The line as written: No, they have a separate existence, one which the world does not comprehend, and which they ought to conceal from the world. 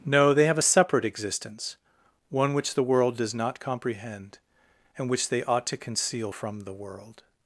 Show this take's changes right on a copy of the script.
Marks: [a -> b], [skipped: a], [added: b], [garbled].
No, they have a separate existence, one which the world does not comprehend, and which they ought to conceal from the world.